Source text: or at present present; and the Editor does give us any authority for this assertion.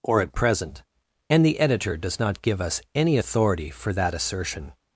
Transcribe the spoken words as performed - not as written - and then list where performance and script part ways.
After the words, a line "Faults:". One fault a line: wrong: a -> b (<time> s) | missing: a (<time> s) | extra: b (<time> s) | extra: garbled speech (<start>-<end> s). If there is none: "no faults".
or at present; and the Editor does not give us any authority for that assertion.
Faults:
missing: present (0.8 s)
extra: not (2.2 s)
wrong: this -> that (3.9 s)